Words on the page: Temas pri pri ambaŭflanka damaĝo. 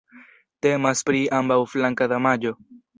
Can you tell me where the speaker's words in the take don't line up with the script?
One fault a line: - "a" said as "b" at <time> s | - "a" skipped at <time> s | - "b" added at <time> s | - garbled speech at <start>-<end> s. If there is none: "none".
- "pri" skipped at 1.2 s